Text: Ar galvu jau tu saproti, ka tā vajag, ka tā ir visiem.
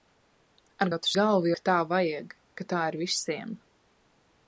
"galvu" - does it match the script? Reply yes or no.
no